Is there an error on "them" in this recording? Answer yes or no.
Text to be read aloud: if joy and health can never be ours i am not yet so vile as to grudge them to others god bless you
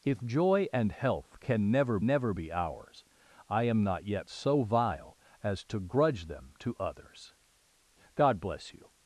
no